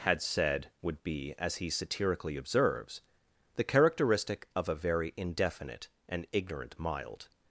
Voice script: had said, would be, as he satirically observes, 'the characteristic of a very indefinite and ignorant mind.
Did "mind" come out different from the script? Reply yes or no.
yes